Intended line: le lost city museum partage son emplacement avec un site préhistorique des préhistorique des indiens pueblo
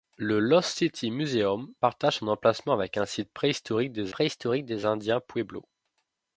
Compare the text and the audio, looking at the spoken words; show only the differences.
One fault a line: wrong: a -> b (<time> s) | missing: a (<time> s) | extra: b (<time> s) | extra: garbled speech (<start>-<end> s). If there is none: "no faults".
no faults